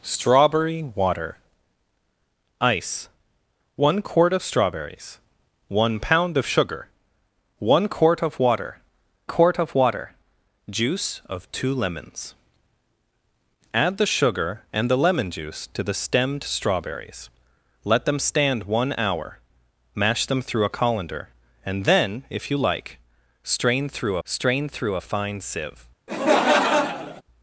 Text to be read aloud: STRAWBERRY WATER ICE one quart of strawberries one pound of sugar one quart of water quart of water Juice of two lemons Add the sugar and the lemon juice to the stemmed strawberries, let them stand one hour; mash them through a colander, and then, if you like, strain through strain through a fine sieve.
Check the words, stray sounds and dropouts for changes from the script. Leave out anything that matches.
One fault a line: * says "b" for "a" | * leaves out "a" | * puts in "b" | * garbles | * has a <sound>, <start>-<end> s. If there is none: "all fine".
* has a laugh, 26.1-27.2 s